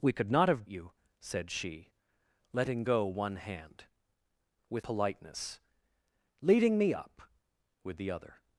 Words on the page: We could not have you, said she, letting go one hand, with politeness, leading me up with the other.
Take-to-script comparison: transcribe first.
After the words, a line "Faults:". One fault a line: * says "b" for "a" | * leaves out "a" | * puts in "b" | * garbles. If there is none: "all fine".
We could not have you, said she, letting go one hand, with politeness, leading me up with the other.
Faults:
all fine